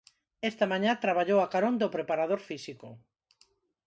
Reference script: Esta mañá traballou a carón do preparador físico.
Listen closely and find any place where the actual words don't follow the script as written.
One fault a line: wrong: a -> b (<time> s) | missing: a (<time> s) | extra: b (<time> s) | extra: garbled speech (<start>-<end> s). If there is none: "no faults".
no faults